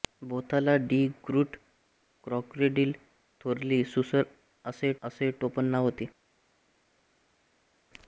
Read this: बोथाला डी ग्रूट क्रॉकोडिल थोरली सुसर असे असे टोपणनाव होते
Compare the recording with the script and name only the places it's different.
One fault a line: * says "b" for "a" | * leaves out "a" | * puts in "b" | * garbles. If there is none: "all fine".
all fine